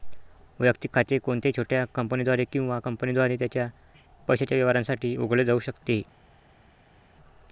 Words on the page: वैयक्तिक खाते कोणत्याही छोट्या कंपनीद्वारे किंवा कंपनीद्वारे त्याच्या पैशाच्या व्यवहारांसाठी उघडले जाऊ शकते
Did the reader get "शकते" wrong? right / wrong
right